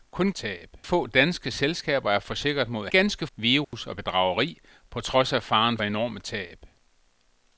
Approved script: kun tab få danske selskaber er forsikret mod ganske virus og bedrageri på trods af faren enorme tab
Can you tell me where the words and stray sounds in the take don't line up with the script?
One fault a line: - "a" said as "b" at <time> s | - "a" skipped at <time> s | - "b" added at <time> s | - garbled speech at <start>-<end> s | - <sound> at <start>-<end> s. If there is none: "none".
- dropout at 3.6-3.7 s